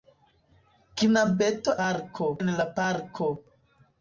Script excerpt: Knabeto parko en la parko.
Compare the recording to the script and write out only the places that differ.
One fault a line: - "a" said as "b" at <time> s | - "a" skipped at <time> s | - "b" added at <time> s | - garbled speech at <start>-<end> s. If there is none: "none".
none